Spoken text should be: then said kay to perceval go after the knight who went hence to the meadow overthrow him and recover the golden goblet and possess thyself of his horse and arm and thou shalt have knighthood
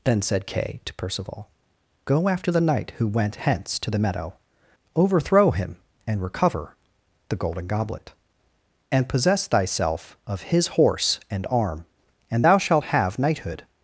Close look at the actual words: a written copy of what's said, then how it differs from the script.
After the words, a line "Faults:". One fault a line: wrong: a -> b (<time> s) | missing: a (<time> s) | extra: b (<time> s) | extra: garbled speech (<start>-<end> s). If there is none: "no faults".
then said kay to perceval go after the knight who went hence to the meadow overthrow him and recover the golden goblet and possess thyself of his horse and arm and thou shalt have knighthood
Faults:
no faults